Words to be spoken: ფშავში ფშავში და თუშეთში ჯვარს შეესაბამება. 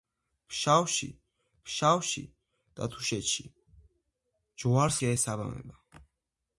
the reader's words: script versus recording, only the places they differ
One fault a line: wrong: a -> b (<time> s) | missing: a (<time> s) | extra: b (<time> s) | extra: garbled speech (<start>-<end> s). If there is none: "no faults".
no faults